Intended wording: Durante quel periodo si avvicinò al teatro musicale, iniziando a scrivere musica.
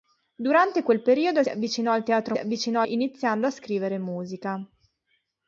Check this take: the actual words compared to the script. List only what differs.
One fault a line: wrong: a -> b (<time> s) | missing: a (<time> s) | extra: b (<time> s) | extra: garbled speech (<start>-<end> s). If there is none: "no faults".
missing: si (1.4 s)
wrong: musicale -> avvicinò (2.4 s)